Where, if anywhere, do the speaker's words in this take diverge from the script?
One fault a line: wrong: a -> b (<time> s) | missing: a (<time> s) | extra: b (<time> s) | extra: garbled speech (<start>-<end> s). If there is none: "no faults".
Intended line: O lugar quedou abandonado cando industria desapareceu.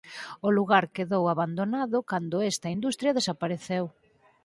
extra: esta (2.5 s)